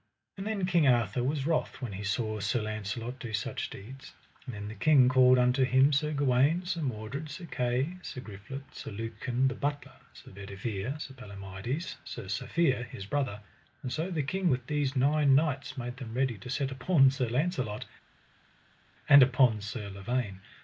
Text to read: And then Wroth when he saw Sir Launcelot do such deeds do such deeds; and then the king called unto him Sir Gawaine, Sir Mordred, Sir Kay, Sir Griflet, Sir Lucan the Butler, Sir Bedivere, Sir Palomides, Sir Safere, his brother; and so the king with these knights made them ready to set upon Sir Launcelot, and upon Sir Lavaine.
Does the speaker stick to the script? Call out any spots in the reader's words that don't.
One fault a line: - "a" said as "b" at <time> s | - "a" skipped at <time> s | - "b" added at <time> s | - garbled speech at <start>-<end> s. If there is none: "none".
- "King Arthur was" added at 0.7 s
- "do such deeds" skipped at 4.1 s
- "nine" added at 14.9 s